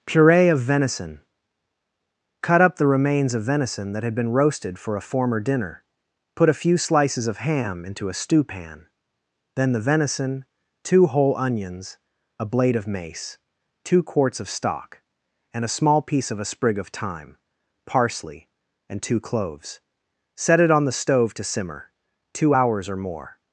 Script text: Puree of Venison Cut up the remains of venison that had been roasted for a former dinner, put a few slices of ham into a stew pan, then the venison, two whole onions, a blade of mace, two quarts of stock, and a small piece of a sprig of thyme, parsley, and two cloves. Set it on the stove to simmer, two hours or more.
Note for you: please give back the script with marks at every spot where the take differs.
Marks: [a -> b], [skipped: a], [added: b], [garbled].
Puree of Venison Cut up the remains of venison that had been roasted for a former dinner, put a few slices of ham into a stew pan, then the venison, two whole onions, a blade of mace, two quarts of stock, and a small piece of a sprig of thyme, parsley, and two cloves. Set it on the stove to simmer, two hours or more.